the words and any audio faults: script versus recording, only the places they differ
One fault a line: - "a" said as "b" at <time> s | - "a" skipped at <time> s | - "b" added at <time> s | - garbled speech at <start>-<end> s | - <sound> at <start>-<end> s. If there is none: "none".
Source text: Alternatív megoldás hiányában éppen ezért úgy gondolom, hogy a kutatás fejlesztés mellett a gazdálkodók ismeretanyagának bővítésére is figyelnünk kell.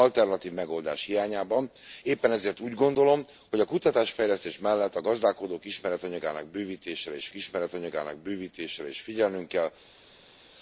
- "ismeretanyagának bővítésére is" added at 7.3 s